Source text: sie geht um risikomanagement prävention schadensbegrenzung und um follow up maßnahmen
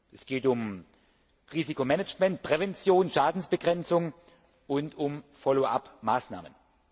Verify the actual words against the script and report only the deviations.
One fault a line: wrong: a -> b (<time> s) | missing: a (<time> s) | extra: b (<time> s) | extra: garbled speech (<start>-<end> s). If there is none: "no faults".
wrong: sie -> es (0.1 s)